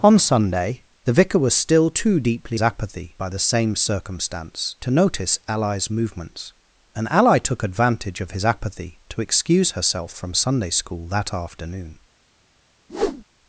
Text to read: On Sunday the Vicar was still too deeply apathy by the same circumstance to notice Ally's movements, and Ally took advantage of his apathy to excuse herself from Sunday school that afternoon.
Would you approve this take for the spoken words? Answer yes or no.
yes